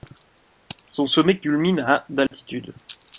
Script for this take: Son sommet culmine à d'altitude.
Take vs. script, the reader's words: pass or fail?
pass